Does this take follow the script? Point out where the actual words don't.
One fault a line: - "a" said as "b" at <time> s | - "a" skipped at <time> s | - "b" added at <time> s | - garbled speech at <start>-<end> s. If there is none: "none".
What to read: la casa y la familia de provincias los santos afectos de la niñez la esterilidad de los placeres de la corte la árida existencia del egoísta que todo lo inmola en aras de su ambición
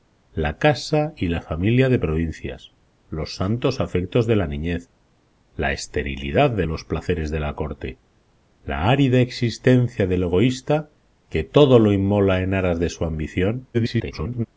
- garbled speech at 13.7-14.5 s